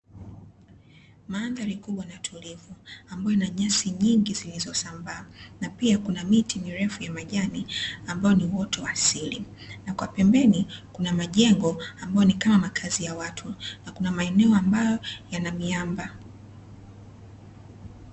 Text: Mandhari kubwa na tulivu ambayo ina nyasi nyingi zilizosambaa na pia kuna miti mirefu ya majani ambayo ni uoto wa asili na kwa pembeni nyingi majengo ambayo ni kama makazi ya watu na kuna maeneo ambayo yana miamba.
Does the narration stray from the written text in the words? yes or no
yes